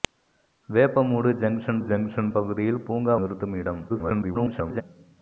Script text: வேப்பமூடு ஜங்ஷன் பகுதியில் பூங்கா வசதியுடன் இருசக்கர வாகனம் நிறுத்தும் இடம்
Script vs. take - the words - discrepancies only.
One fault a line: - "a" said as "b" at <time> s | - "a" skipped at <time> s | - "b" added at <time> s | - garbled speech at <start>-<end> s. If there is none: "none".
- "ஜங்ஷன்" added at 1.8 s
- "வசதியுடன் இருசக்கர வாகனம்" skipped at 3.1 s
- garbled speech at 3.9-4.8 s